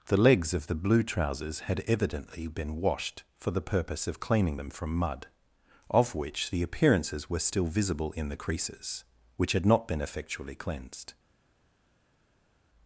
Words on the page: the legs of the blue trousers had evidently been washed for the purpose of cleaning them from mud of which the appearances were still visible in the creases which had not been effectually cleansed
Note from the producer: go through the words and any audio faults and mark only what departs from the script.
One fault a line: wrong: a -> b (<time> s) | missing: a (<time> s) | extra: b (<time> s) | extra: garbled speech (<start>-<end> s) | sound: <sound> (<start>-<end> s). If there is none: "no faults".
no faults